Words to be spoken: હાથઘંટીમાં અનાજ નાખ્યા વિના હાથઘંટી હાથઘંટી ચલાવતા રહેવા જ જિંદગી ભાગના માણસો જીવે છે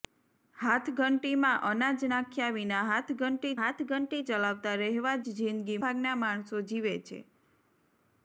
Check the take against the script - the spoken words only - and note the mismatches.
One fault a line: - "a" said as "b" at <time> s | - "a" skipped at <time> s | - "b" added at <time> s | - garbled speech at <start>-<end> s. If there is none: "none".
none